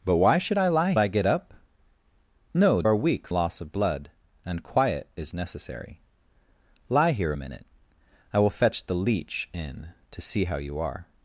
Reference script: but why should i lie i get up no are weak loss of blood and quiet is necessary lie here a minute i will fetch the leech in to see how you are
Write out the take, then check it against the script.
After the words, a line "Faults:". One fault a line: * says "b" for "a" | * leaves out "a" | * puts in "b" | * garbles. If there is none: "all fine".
but why should i lie i get up no are weak loss of blood and quiet is necessary lie here a minute i will fetch the leech in to see how you are
Faults:
all fine